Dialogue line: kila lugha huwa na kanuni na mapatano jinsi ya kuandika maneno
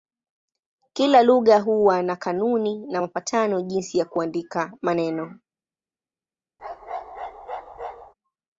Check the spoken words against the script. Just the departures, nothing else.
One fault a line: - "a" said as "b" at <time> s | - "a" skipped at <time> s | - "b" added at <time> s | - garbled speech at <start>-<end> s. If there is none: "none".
none